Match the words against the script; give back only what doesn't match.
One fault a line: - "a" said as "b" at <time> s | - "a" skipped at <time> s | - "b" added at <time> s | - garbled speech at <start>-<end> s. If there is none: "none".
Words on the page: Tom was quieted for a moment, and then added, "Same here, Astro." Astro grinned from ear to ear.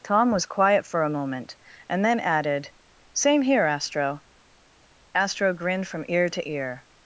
- "quieted" said as "quiet" at 0.5 s